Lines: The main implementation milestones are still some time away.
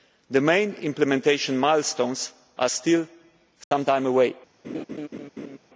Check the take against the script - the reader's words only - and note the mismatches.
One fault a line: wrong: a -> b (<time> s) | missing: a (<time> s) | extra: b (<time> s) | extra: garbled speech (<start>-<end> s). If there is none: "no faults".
no faults